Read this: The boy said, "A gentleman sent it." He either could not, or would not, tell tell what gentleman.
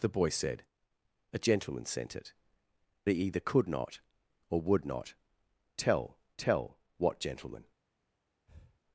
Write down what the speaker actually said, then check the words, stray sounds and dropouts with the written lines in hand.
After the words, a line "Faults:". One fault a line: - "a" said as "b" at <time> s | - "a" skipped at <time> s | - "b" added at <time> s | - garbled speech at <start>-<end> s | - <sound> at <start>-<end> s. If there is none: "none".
The boy said, "A gentleman sent it." He either could not, or would not, tell tell what gentleman.
Faults:
- breath at 8.5-8.8 s